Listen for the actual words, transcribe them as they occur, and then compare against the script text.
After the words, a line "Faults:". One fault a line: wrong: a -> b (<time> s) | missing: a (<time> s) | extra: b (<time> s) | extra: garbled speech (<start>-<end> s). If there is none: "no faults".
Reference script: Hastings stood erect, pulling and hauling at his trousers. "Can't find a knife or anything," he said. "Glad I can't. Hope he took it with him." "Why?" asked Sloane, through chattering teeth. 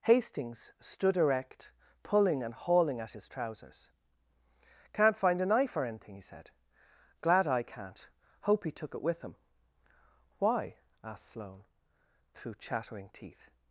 Hastings stood erect, pulling and hauling at his trousers. "Can't find a knife or anything," he said. "Glad I can't. Hope he took it with him." "Why?" asked Sloane, through chattering teeth.
Faults:
no faults